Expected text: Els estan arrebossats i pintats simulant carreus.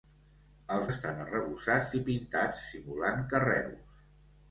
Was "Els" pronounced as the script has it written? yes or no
yes